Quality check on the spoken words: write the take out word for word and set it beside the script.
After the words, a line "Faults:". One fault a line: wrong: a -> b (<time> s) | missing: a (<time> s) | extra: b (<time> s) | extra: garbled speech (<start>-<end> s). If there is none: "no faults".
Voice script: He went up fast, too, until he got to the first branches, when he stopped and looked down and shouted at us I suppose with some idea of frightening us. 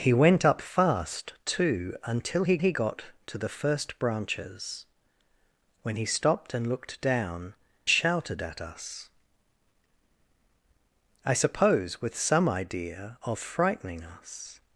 He went up fast, too, until he he got to the first branches, when he stopped and looked down shouted at us I suppose with some idea of frightening us.
Faults:
extra: he (2.6 s)
missing: and (7.5 s)